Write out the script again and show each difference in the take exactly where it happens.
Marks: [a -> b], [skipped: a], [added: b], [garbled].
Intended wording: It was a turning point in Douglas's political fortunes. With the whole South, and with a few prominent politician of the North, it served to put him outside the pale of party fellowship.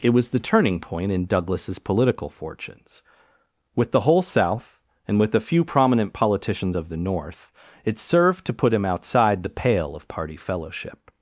It was [a -> the] turning point in Douglas's political fortunes. With the whole South, and with a few prominent [politician -> politicians] of the North, it served to put him outside the pale of party fellowship.